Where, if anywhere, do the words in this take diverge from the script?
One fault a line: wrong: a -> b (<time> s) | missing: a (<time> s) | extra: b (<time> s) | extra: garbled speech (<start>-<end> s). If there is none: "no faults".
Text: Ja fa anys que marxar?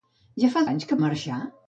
no faults